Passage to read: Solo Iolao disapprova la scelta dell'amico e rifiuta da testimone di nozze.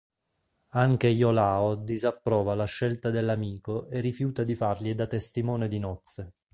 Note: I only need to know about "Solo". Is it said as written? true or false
false